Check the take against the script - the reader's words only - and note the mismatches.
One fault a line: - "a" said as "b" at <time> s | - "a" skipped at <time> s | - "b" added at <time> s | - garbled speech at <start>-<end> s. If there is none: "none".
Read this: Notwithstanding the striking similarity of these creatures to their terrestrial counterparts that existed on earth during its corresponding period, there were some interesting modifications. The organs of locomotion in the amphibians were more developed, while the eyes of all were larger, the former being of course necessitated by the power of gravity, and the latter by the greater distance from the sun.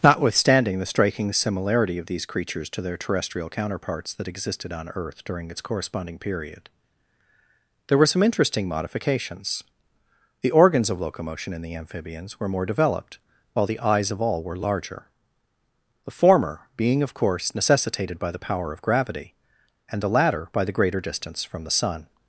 none